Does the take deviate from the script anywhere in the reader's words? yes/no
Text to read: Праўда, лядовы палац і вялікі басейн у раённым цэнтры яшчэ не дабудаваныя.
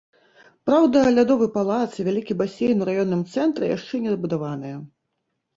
no